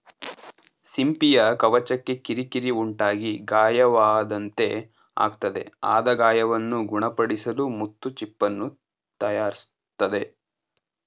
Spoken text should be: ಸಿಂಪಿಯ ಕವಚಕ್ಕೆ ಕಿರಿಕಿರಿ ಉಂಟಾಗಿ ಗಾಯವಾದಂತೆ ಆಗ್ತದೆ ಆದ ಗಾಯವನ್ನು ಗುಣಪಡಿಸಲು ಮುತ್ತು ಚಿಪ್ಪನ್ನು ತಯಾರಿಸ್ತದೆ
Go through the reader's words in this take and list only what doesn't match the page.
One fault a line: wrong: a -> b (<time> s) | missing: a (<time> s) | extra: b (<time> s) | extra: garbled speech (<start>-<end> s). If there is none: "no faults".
no faults